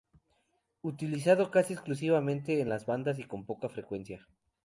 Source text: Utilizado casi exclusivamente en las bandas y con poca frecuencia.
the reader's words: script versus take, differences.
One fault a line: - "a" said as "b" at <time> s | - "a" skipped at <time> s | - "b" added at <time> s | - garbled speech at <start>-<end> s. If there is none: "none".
none